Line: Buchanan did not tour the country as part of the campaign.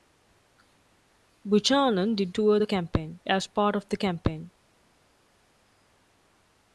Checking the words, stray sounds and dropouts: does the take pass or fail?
fail